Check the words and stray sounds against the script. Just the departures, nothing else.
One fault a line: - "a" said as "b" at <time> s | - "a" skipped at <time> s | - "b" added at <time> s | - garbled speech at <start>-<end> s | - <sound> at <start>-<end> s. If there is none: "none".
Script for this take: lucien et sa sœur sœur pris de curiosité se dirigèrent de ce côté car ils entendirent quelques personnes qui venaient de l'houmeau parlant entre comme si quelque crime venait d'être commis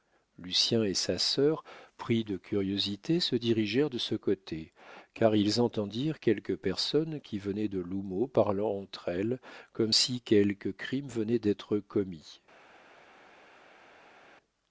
- "sœur" skipped at 1.6 s
- "elles" added at 9.1 s